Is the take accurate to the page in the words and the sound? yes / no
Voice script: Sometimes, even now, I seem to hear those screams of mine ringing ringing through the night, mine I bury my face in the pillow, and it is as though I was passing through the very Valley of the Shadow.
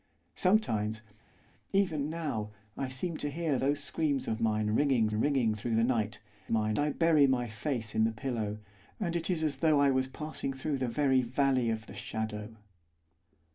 yes